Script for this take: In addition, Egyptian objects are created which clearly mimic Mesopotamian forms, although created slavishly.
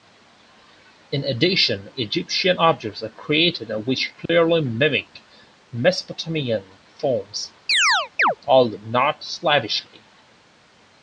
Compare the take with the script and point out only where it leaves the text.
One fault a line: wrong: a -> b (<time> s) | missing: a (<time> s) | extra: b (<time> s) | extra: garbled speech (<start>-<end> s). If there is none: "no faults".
wrong: created -> not (8.8 s)